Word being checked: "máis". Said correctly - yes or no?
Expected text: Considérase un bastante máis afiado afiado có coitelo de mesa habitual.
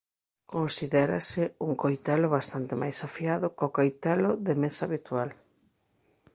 yes